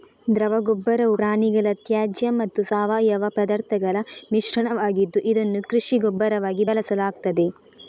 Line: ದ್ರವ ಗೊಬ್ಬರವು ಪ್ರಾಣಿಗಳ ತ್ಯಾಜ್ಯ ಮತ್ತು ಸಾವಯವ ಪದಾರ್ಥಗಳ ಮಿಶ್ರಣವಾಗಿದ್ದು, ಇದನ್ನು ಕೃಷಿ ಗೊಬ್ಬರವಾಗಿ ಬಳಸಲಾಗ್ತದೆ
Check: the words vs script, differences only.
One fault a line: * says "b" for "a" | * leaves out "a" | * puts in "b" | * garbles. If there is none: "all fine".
all fine